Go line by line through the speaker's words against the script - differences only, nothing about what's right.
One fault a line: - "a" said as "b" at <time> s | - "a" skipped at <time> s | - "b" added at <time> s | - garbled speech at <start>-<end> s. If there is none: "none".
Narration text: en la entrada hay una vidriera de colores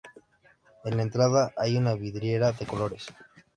none